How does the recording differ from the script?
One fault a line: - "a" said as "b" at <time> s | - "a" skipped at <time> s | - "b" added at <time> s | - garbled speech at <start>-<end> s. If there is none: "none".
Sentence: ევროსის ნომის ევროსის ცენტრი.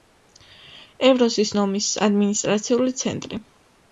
- "ევროსის" said as "ადმინისტრაციული" at 2.1 s